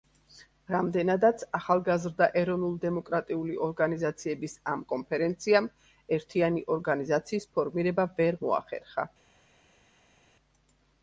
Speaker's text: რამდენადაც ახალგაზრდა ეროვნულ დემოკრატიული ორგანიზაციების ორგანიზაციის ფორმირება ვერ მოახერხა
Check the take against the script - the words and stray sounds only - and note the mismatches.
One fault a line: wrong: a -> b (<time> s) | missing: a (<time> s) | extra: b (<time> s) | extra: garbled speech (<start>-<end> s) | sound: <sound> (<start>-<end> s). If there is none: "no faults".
extra: ამ კონფერენციამ ერთიანი (4.8 s)